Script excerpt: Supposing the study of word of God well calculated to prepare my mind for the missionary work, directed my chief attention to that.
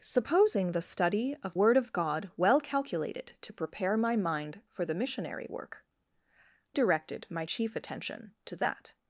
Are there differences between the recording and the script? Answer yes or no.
no